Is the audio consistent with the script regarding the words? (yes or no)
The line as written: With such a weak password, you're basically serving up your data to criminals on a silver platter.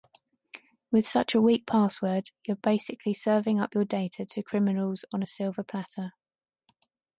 yes